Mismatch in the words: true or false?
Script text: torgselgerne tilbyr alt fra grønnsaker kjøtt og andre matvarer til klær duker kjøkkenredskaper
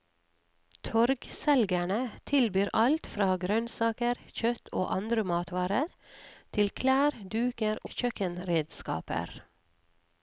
false